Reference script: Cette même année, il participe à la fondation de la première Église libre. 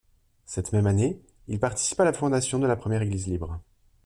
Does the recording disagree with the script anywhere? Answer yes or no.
no